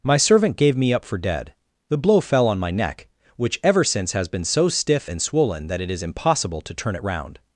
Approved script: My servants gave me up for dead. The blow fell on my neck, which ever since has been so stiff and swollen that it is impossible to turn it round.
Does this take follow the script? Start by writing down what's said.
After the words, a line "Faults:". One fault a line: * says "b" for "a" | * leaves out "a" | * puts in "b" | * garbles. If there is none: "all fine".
My servant gave me up for dead. The blow fell on my neck, which ever since has been so stiff and swollen that it is impossible to turn it round.
Faults:
* says "servant" for "servants"